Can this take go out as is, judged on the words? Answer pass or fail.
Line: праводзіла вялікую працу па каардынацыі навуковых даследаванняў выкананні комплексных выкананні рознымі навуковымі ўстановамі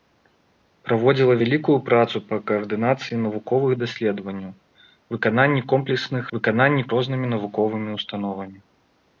pass